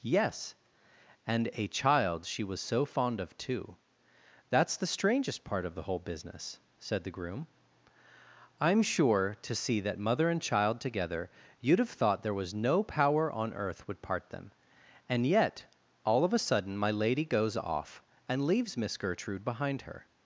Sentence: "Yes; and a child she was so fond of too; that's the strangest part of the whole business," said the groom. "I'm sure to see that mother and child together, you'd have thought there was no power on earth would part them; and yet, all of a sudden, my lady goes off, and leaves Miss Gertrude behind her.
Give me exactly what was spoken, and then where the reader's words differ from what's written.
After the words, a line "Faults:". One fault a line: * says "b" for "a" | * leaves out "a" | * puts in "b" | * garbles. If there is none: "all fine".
"Yes; and a child she was so fond of too; that's the strangest part of the whole business," said the groom. "I'm sure to see that mother and child together, you'd have thought there was no power on earth would part them; and yet, all of a sudden, my lady goes off, and leaves Miss Gertrude behind her.
Faults:
all fine